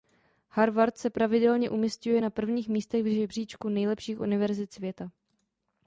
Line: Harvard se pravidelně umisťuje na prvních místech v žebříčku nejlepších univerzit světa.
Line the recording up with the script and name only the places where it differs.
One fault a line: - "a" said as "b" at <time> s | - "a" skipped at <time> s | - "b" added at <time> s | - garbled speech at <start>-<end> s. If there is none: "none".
none